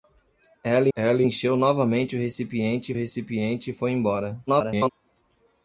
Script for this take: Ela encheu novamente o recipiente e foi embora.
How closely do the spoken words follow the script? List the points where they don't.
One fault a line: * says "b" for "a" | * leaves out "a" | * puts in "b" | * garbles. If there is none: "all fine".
* puts in "ela"
* puts in "recipiente"
* garbles